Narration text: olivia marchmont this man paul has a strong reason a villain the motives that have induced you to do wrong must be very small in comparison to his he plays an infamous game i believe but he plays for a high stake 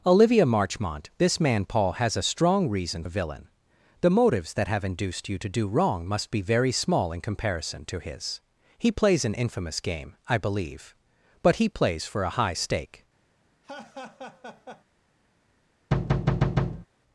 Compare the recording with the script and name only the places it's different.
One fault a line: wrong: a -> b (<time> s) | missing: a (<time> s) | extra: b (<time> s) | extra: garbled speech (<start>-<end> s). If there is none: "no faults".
no faults